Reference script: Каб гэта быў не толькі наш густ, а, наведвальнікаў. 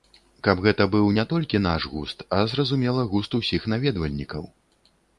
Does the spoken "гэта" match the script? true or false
true